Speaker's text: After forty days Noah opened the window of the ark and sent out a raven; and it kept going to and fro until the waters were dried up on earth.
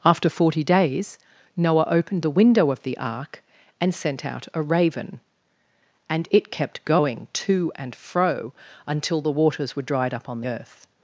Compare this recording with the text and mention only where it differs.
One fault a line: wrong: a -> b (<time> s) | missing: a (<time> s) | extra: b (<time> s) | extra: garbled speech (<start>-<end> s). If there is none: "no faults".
no faults